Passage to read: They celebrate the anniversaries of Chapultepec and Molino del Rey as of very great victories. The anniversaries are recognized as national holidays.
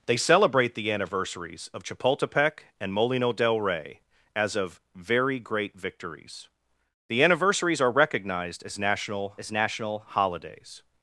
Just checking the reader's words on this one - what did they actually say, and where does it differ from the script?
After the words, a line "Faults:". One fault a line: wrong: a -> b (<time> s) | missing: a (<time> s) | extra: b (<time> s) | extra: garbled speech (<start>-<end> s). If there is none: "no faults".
They celebrate the anniversaries of Chapultepec and Molino del Rey as of very great victories. The anniversaries are recognized as national as national holidays.
Faults:
extra: as national (9.4 s)